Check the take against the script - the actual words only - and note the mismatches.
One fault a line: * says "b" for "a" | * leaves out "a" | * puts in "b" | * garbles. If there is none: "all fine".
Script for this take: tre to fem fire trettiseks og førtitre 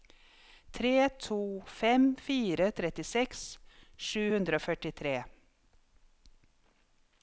* puts in "sju hundre"